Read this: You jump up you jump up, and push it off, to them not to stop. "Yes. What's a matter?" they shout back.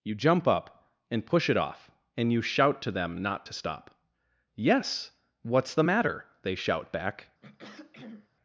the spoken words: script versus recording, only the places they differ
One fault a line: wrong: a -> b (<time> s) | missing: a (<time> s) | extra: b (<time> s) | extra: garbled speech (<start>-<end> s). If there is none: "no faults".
missing: you jump up (0.9 s)
extra: and you shout (2.2 s)
wrong: a -> the (5.7 s)